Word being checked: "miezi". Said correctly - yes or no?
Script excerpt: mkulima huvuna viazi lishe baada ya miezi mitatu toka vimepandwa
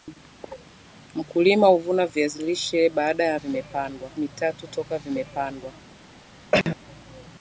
no